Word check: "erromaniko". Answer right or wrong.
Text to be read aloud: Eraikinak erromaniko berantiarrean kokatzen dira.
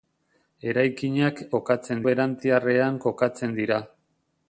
wrong